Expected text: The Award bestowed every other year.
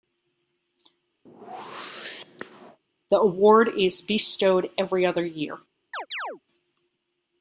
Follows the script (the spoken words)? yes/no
no